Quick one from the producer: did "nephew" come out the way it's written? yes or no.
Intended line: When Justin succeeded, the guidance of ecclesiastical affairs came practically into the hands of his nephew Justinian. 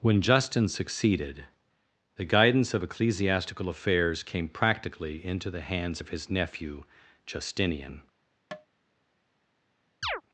yes